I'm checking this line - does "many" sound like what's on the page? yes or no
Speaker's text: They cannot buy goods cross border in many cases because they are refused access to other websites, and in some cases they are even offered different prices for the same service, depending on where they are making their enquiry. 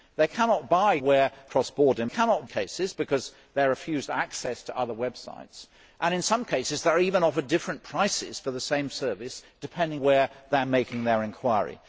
no